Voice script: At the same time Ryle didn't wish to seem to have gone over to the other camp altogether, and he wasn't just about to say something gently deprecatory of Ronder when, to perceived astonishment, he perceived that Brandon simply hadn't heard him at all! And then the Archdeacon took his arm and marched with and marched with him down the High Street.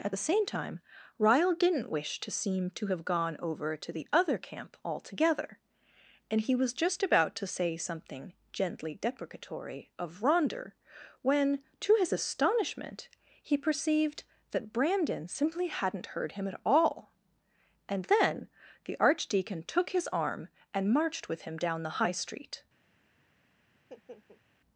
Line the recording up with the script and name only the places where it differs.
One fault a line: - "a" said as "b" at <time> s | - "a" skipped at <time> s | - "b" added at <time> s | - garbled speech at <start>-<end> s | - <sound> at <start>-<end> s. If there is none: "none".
- "wasn't" said as "was" at 6.5 s
- "perceived" said as "his" at 12.0 s
- "and marched with" skipped at 21.4 s
- laugh at 23.7-24.4 s